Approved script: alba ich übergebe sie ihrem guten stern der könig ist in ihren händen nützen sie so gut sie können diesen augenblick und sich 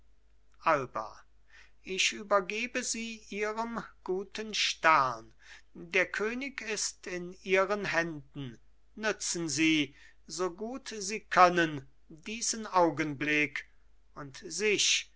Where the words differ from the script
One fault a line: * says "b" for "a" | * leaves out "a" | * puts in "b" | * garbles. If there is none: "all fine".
all fine